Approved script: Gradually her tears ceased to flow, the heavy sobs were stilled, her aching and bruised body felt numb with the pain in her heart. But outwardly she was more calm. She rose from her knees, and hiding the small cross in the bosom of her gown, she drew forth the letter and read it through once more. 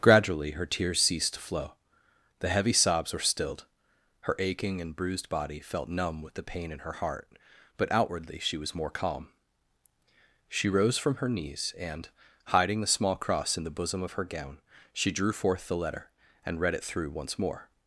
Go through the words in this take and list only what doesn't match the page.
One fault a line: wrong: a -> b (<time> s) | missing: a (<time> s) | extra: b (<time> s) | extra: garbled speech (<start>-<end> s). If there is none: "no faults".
no faults